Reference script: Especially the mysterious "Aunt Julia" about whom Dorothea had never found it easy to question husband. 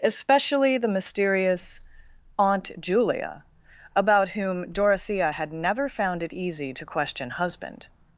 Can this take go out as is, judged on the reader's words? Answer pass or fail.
pass